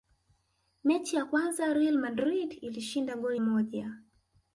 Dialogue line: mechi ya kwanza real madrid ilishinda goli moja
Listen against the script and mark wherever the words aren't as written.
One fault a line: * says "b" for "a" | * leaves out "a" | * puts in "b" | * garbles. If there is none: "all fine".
all fine